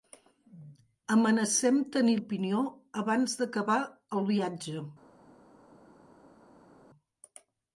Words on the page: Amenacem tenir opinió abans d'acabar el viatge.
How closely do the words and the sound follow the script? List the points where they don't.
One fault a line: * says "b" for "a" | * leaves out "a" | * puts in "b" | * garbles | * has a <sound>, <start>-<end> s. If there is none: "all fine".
all fine